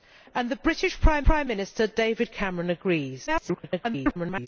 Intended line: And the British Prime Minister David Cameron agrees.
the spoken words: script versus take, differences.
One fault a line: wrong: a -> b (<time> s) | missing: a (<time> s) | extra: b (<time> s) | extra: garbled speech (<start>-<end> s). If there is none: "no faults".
extra: Prime (1.2 s)
extra: garbled speech (3.3-4.5 s)